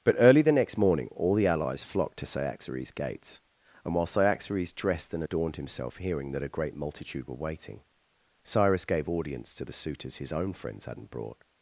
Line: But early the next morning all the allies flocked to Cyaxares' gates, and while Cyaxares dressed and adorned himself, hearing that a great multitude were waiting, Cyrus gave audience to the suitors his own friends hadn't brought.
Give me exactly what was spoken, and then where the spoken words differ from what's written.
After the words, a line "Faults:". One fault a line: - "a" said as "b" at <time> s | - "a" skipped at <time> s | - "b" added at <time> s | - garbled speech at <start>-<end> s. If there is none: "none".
But early the next morning all the allies flocked to Cyaxares' gates, and while Cyaxares dressed and adorned himself, hearing that a great multitude were waiting, Cyrus gave audience to the suitors his own friends hadn't brought.
Faults:
none